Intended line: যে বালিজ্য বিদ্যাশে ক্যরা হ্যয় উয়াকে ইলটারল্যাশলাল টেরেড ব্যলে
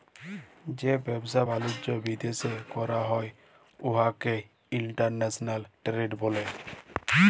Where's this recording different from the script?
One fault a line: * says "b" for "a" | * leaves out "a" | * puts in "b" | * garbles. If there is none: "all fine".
* puts in "ব্যবসা"